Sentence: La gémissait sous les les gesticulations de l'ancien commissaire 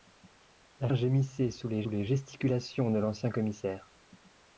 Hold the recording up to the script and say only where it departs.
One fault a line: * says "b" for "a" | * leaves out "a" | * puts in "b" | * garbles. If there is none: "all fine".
all fine